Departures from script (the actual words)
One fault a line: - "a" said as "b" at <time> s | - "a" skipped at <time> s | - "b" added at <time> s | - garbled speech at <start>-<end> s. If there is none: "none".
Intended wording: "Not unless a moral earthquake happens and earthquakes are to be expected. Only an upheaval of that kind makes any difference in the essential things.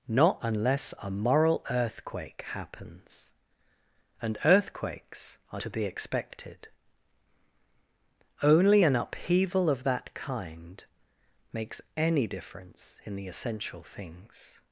none